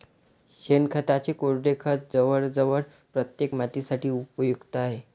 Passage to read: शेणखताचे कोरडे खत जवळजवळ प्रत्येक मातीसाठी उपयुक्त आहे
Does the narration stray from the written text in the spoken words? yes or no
no